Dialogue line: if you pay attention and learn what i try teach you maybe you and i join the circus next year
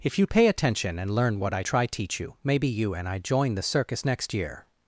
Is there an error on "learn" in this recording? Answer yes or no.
no